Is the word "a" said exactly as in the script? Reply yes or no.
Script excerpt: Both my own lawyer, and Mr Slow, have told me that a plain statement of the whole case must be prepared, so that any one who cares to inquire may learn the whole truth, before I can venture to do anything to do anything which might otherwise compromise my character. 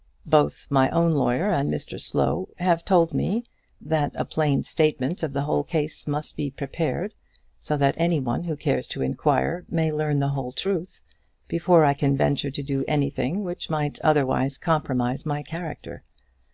yes